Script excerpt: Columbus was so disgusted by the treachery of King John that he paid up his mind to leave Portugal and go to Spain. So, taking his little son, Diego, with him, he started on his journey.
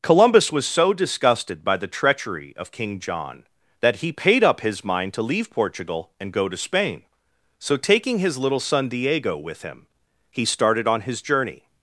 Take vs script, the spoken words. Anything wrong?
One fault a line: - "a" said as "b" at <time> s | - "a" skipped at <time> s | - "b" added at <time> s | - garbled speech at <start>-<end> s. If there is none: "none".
none